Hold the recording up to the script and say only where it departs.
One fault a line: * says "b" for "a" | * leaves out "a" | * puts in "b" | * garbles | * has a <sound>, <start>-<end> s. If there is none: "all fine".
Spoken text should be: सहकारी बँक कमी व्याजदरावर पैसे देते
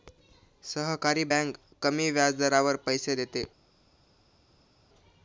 all fine